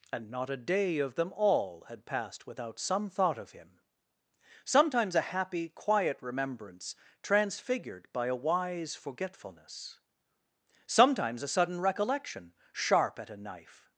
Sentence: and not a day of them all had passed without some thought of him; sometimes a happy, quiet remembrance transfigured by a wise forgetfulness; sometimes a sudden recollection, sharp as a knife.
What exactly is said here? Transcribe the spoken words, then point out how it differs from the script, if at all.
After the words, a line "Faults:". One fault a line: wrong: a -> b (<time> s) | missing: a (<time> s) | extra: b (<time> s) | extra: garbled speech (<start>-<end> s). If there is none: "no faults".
and not a day of them all had passed without some thought of him; sometimes a happy, quiet remembrance transfigured by a wise forgetfulness; sometimes a sudden recollection, sharp at a knife.
Faults:
wrong: as -> at (13.2 s)